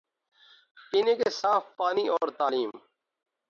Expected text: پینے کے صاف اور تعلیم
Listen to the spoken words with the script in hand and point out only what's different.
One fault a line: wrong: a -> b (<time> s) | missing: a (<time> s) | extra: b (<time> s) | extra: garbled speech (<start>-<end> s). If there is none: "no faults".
extra: پانی (1.8 s)